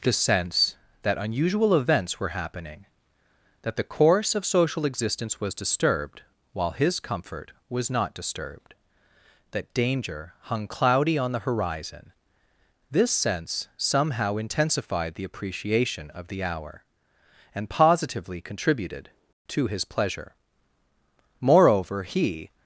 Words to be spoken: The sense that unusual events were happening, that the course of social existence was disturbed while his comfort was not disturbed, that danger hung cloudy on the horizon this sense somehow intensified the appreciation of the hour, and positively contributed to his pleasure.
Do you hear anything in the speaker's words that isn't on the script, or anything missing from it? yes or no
yes